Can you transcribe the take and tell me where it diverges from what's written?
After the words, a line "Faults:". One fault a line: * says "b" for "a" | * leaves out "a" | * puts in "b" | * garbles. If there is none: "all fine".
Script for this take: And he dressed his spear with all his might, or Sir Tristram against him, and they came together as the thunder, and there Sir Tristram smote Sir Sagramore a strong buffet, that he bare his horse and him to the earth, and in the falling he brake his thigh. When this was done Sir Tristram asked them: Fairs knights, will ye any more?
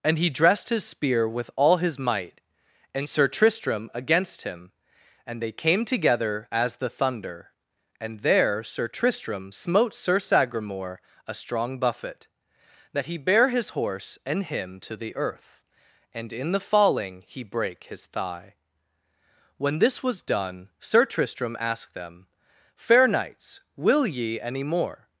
And he dressed his spear with all his might, and Sir Tristram against him, and they came together as the thunder, and there Sir Tristram smote Sir Sagramore a strong buffet, that he bare his horse and him to the earth, and in the falling he brake his thigh. When this was done Sir Tristram asked them: Fair knights, will ye any more?
Faults:
* says "and" for "or"
* says "Fair" for "Fairs"